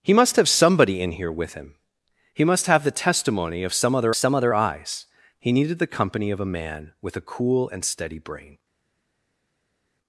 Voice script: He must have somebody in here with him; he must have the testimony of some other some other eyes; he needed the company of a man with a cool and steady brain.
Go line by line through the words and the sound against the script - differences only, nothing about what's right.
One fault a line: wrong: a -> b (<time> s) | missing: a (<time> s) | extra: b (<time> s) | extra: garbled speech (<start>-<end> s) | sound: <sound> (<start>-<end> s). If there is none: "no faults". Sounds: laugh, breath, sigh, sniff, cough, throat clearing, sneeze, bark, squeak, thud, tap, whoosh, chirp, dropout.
no faults